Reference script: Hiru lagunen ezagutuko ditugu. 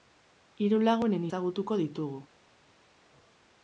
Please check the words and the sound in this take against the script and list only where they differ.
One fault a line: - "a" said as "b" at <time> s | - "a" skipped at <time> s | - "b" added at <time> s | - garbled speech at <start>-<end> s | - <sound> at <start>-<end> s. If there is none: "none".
none